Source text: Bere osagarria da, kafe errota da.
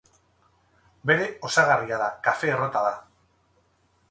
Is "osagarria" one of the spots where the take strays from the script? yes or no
no